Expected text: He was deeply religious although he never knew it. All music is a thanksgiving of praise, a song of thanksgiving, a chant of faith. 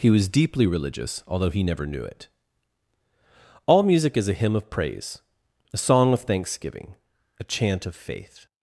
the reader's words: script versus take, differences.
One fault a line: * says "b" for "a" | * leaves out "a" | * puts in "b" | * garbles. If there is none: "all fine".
* says "hymn" for "thanksgiving"